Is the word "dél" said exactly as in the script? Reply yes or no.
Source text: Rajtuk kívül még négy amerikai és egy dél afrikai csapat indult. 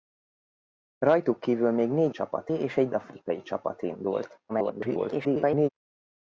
no